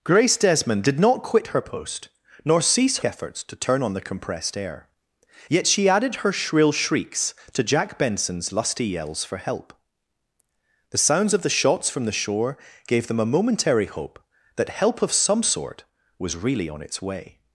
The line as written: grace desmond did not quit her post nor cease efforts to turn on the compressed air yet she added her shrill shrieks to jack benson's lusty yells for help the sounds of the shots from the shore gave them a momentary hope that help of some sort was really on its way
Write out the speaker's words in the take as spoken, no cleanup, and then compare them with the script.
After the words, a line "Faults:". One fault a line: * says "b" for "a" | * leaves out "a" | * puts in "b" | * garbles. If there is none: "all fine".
grace desmond did not quit her post nor cease efforts to turn on the compressed air yet she added her shrill shrieks to jack benson's lusty yells for help the sounds of the shots from the shore gave them a momentary hope that help of some sort was really on its way
Faults:
all fine